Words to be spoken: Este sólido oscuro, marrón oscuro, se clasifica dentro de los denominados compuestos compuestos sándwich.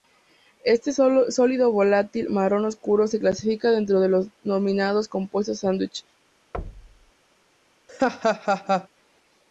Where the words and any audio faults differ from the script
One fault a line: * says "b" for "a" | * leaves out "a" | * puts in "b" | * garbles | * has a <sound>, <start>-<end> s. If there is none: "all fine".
* says "volátil" for "oscuro"
* leaves out "compuestos"
* has a thud, 6.5-7.1 s
* has a laugh, 7.9-8.9 s